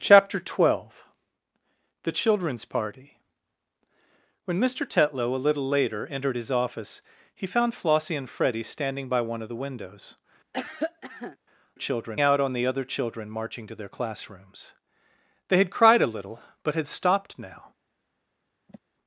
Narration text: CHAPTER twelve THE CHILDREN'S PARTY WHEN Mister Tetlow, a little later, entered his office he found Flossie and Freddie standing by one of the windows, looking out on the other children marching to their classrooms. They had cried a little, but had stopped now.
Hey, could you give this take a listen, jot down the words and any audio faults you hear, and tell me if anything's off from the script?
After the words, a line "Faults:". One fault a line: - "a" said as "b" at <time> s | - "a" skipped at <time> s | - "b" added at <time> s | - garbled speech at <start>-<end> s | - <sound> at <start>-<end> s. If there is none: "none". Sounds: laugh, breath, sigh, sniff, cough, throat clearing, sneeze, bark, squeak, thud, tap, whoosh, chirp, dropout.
CHAPTER twelve THE CHILDREN'S PARTY WHEN Mister Tetlow, a little later, entered his office he found Flossie and Freddie standing by one of the windows, children out on the other children marching to their classrooms. They had cried a little, but had stopped now.
Faults:
- cough at 10.5-11.4 s
- "looking" said as "children" at 11.7 s
- sigh at 18.7-18.8 s